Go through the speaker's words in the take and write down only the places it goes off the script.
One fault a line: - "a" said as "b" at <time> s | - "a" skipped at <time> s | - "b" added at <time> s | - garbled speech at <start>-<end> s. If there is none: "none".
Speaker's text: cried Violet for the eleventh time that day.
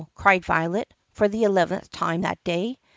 none